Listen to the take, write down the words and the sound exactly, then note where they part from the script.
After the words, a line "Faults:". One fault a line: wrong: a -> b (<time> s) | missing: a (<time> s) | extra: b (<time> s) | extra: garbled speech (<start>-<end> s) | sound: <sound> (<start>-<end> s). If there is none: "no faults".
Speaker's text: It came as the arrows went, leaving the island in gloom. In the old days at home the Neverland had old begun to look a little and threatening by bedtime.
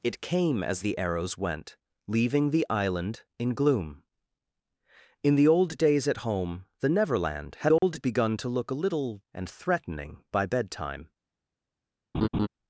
It came as the arrows went, leaving the island in gloom. In the old days at home the Neverland had old begun to look a little and threatening by bedtime.
Faults:
sound: dropout (7.8-7.8 s)
sound: laugh (12.1-12.5 s)